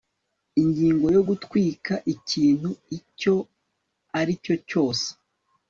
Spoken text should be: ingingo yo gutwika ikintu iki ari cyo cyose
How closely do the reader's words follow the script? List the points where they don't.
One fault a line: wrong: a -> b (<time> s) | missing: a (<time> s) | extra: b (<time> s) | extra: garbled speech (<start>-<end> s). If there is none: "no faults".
wrong: iki -> icyo (3.0 s)